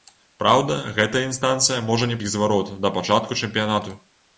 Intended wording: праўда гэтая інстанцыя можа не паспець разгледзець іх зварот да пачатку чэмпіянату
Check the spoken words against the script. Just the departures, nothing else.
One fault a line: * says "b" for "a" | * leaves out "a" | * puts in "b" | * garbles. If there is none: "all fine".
* leaves out "паспець разгледзець"